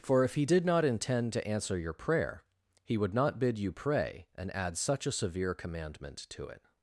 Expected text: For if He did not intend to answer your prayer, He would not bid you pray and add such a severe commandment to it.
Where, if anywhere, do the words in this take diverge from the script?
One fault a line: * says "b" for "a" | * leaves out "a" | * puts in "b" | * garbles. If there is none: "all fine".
all fine